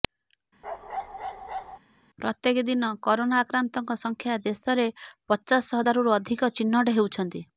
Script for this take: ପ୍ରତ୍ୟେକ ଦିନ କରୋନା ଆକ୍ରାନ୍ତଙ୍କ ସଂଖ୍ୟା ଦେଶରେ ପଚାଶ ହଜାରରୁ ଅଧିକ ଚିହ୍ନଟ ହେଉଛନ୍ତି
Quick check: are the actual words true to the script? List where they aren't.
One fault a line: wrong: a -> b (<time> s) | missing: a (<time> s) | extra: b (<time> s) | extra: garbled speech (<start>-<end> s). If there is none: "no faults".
no faults